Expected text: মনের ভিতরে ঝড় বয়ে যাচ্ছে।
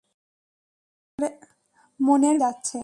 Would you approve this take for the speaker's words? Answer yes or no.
no